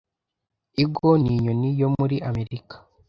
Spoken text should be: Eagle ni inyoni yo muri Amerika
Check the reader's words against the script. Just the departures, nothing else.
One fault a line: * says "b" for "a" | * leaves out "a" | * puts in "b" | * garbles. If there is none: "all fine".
all fine